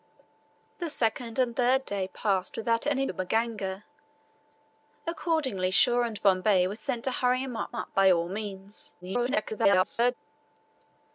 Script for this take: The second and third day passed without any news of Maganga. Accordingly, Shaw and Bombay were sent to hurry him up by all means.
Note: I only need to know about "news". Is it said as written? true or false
false